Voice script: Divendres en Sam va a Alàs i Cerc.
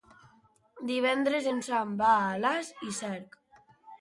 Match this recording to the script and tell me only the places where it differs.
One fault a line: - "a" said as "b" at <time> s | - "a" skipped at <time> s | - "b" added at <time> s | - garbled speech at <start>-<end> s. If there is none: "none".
none